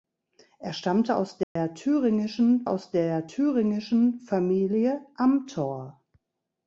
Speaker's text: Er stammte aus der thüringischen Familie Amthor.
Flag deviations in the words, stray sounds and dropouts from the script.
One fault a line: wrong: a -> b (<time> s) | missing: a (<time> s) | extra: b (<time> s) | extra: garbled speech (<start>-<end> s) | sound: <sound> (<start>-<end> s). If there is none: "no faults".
sound: dropout (1.4-1.6 s)
extra: aus der thüringischen (2.7 s)